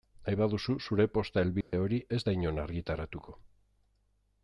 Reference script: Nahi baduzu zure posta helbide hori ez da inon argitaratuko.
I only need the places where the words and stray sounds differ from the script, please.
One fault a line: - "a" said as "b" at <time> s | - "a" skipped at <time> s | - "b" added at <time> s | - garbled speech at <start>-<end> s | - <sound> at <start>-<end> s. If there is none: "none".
- dropout at 1.6-1.7 s